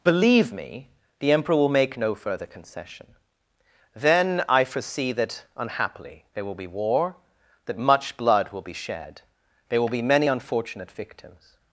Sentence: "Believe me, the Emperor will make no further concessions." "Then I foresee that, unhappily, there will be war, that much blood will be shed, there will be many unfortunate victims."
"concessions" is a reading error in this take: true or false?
true